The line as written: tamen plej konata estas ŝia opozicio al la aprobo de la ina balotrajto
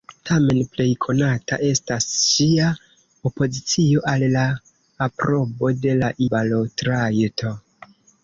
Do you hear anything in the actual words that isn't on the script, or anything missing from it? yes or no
yes